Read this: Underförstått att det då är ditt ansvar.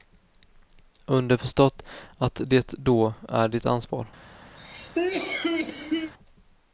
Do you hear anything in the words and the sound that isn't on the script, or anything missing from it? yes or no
yes